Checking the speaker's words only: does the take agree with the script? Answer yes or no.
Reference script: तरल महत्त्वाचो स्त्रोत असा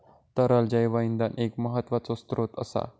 no